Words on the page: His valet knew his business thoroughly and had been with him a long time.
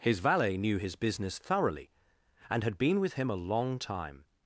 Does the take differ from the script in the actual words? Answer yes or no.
no